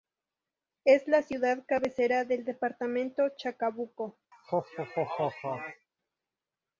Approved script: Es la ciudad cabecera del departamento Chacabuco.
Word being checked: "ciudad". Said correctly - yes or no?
yes